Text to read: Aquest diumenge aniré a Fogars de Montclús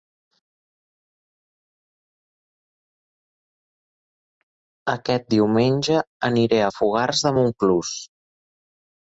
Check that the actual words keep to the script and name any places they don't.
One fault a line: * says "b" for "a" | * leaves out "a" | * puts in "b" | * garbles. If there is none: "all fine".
all fine